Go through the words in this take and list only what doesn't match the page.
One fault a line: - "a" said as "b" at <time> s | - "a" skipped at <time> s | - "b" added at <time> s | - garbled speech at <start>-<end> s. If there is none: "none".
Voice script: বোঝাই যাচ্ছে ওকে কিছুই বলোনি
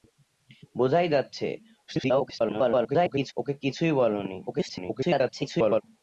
- garbled speech at 1.9-3.3 s
- garbled speech at 4.5-5.8 s